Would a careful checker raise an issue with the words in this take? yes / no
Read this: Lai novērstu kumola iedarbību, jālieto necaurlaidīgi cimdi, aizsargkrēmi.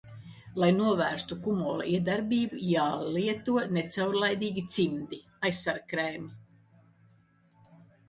no